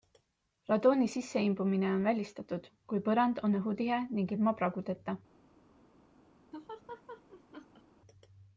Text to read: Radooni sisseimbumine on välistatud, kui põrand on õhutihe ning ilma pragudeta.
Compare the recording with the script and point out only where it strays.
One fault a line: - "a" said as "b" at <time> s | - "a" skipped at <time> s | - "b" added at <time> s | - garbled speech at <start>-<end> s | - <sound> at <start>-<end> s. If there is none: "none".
- laugh at 6.5-7.8 s